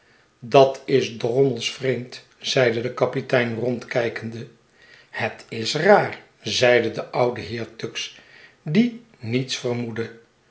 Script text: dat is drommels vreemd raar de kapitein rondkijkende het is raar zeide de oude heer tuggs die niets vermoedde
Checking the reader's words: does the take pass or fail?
fail